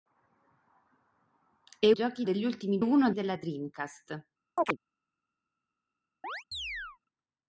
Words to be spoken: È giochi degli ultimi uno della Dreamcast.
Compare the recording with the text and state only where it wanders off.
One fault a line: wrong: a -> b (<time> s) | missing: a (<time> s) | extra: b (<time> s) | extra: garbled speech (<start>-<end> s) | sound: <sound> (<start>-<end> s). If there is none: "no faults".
sound: chirp (4.6-4.8 s)
sound: chirp (6.2-7.0 s)